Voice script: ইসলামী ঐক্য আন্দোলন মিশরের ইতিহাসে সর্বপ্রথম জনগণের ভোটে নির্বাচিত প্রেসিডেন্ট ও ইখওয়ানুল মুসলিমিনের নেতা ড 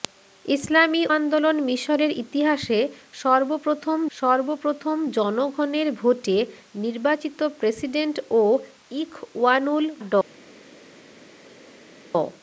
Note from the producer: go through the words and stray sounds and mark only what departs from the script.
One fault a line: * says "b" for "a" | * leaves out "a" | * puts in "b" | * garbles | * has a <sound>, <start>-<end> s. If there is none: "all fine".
* leaves out "ঐক্য"
* puts in "সর্বপ্রথম"
* leaves out "মুসলিমিনের নেতা"